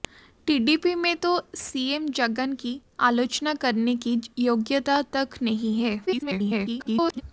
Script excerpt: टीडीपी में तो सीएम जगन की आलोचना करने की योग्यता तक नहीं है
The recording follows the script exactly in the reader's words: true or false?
false